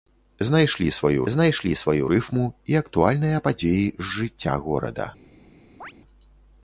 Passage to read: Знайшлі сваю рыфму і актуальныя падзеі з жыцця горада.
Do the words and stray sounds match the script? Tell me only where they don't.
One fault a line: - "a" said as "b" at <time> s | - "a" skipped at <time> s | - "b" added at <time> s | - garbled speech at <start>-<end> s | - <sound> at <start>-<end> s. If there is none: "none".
- "знайшлі сваю" added at 1.3 s
- chirp at 5.8-5.9 s